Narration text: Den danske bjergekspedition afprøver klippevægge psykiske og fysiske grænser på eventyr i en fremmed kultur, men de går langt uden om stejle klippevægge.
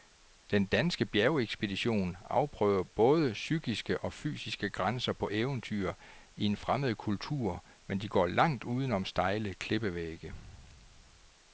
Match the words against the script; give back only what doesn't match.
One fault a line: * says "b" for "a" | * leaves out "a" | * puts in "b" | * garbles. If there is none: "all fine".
* says "både" for "klippevægge"